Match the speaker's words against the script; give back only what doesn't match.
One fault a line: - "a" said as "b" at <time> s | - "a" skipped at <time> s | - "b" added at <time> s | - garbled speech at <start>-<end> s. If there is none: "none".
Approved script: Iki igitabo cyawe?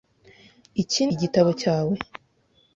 none